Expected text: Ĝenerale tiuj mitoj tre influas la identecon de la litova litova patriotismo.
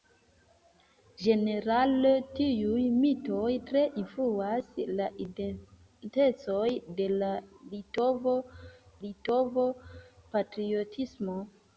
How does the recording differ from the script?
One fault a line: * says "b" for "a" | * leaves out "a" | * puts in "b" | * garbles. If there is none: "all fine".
all fine